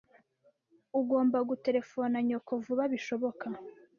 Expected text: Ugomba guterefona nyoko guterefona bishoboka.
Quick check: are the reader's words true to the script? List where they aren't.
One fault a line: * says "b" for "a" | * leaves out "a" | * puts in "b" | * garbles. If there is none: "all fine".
* says "vuba" for "guterefona"